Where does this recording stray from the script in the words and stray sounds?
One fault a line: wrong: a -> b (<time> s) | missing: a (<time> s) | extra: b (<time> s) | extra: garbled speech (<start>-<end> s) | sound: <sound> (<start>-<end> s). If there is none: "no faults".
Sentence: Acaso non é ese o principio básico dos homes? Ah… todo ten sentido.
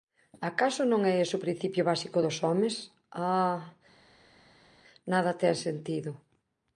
wrong: todo -> nada (5.1 s)